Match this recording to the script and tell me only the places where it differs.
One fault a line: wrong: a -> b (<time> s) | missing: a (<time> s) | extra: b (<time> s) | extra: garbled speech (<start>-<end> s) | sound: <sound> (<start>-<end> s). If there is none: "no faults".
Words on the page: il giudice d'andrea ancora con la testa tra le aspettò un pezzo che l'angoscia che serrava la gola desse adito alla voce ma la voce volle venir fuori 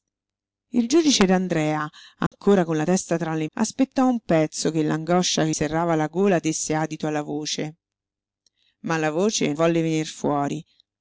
sound: dropout (2.3-2.3 s)